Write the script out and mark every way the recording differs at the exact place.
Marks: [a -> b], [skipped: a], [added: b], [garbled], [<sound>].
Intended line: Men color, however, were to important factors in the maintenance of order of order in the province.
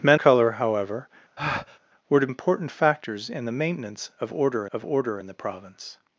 Men color, however, [breath] were to important factors in the maintenance of order of order in the province.